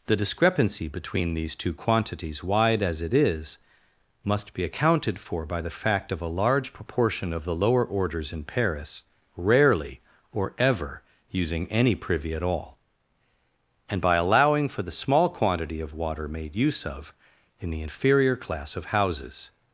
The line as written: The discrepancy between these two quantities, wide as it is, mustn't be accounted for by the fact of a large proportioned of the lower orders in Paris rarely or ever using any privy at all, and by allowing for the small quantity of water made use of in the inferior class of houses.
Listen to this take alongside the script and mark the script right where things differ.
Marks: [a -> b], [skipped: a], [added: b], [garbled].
The discrepancy between these two quantities, wide as it is, [mustn't -> must] be accounted for by the fact of a large [proportioned -> proportion] of the lower orders in Paris rarely or ever using any privy at all, and by allowing for the small quantity of water made use of in the inferior class of houses.